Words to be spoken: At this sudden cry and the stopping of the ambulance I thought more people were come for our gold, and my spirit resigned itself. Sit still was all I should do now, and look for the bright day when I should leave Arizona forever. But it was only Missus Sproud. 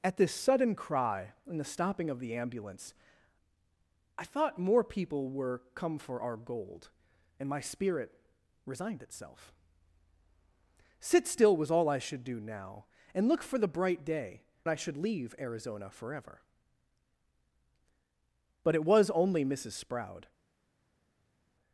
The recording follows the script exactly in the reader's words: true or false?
false